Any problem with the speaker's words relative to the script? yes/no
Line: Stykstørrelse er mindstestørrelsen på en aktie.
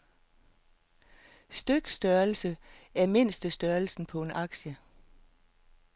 no